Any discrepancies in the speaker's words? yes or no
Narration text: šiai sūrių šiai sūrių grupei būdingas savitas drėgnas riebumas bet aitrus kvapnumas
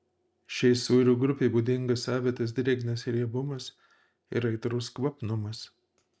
yes